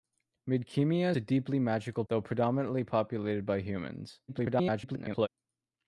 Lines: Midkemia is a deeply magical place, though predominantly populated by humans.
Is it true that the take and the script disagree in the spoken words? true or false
true